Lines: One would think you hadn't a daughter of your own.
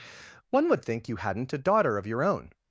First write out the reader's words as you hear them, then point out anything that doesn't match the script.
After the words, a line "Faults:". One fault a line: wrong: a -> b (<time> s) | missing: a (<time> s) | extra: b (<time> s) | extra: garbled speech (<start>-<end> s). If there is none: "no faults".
One would think you hadn't a daughter of your own.
Faults:
no faults